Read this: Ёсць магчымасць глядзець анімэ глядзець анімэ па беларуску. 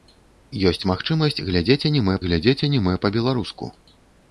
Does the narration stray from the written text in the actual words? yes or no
no